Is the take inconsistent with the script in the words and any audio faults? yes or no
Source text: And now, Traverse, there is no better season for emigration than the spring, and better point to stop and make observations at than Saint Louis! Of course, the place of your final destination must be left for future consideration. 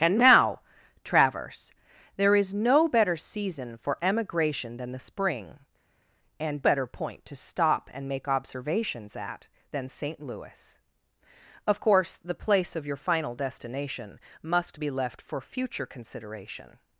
no